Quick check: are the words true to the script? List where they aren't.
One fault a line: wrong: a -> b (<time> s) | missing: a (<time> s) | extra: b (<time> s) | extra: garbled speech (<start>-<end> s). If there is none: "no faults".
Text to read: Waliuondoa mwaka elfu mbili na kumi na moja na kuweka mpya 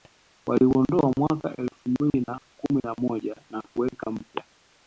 no faults